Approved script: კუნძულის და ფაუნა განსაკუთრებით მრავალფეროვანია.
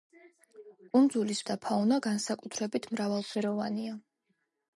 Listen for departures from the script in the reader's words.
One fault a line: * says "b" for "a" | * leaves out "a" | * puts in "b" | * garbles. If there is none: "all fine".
all fine